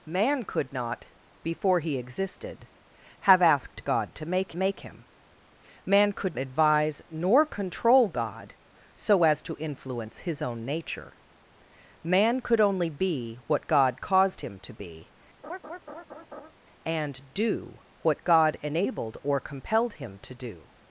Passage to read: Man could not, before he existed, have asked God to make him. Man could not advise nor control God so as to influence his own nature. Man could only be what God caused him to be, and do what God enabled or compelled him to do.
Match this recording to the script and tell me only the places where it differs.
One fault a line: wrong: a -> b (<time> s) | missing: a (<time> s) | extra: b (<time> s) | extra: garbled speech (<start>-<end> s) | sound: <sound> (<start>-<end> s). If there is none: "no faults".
extra: make (4.5 s)
missing: not (6.4 s)
sound: laugh (15.4-16.5 s)